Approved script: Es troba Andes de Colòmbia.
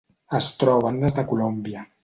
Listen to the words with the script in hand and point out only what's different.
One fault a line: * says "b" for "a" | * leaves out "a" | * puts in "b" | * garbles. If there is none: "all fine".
all fine